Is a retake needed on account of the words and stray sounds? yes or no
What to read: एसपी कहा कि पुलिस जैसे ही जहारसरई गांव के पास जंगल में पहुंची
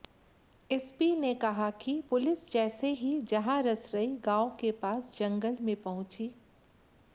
yes